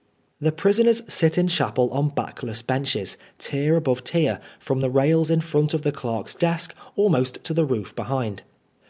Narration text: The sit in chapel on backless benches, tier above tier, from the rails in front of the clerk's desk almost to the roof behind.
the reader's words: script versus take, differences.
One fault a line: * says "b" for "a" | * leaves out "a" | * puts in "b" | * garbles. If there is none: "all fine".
* puts in "prisoners"